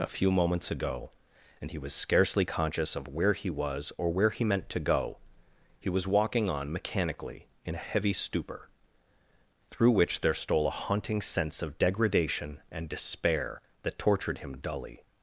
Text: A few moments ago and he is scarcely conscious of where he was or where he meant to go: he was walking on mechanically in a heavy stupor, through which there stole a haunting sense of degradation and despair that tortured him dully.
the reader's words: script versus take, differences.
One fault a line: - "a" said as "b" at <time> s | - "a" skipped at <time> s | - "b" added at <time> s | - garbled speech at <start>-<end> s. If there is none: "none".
- "is" said as "was" at 1.8 s